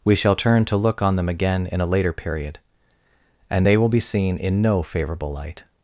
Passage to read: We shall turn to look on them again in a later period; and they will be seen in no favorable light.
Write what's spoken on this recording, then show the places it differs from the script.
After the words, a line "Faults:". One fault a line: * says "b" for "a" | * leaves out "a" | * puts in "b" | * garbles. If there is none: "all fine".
We shall turn to look on them again in a later period; and they will be seen in no favorable light.
Faults:
all fine